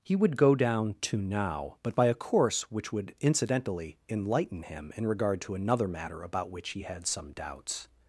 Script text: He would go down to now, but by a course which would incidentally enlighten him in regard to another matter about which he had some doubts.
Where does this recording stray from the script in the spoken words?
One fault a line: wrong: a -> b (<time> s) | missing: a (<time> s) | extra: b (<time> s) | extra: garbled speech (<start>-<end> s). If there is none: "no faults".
no faults